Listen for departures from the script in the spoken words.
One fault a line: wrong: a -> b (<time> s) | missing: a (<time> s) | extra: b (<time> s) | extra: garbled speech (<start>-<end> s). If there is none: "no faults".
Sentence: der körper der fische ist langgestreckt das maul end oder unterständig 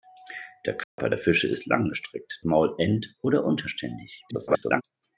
missing: das (2.4 s)
extra: garbled speech (4.3-4.8 s)